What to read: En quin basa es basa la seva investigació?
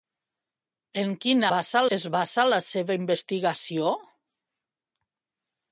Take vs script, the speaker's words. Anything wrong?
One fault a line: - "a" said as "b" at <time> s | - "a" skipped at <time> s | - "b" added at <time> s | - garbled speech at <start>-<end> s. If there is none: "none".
none